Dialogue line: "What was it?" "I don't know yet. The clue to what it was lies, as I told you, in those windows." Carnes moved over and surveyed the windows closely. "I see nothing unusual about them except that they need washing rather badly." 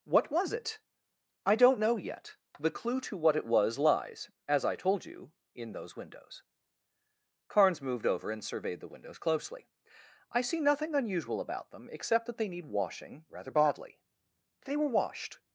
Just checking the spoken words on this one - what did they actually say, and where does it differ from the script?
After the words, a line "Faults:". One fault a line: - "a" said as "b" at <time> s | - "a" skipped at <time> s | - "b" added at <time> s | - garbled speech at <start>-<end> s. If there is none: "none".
"What was it?" "I don't know yet. The clue to what it was lies, as I told you, in those windows." Carnes moved over and surveyed the windows closely. "I see nothing unusual about them except that they need washing rather badly." "They were washed
Faults:
- "They were washed" added at 14.7 s